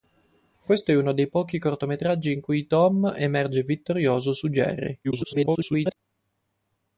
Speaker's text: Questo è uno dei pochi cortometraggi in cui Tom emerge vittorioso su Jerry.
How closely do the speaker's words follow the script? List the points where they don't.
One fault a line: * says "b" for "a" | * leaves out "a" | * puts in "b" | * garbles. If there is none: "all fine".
* garbles